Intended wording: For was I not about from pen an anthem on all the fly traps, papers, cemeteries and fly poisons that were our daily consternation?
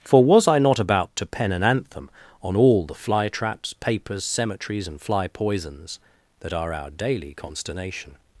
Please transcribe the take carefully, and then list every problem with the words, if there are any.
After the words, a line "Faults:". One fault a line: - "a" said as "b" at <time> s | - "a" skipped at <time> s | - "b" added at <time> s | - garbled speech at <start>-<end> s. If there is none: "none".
For was I not about to pen an anthem on all the fly traps, papers, cemeteries and fly poisons that are our daily consternation?
Faults:
- "from" said as "to" at 1.2 s
- "were" said as "are" at 6.5 s